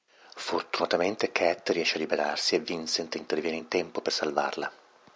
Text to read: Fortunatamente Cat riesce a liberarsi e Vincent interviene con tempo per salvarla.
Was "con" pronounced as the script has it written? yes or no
no